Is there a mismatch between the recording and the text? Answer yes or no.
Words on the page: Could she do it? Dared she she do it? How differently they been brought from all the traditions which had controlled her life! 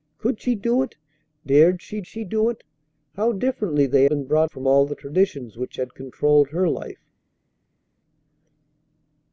no